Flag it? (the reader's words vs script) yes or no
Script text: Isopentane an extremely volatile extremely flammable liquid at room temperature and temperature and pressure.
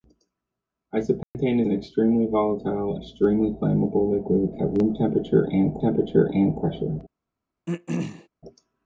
no